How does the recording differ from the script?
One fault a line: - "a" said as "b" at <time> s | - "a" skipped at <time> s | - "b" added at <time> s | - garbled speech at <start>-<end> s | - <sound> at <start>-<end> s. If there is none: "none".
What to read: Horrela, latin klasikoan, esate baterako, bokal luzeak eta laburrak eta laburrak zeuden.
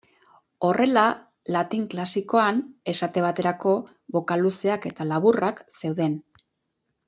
- "eta laburrak" skipped at 5.6 s